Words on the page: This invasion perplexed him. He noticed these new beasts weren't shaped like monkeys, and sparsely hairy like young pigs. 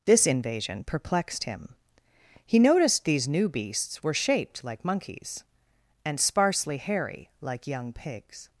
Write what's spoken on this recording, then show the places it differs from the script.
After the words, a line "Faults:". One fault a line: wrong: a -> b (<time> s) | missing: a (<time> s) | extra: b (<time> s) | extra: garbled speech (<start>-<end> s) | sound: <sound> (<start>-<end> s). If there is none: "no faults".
This invasion perplexed him. He noticed these new beasts were shaped like monkeys, and sparsely hairy like young pigs.
Faults:
wrong: weren't -> were (4.0 s)